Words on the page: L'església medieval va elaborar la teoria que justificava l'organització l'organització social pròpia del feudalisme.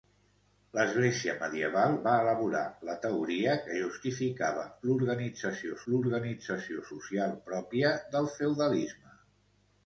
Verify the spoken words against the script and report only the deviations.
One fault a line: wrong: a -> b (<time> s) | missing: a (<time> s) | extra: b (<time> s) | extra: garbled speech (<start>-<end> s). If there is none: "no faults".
no faults